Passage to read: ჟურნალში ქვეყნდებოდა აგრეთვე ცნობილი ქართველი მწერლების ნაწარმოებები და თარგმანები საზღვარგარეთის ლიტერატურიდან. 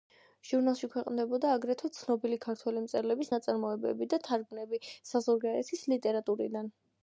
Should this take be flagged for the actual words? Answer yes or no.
no